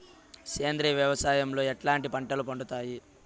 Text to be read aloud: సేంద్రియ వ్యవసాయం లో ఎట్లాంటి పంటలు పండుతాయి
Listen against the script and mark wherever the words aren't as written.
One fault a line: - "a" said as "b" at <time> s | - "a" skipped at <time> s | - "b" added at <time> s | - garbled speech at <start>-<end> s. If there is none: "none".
none